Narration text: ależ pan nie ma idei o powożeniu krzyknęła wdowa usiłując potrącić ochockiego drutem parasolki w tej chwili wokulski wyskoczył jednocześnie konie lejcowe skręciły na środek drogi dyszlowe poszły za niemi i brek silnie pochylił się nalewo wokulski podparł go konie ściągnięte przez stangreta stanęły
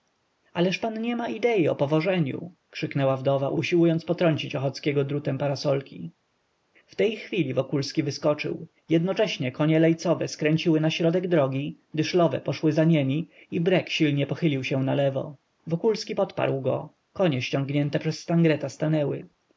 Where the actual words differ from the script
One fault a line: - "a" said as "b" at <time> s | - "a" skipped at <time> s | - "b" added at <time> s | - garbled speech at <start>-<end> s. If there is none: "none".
none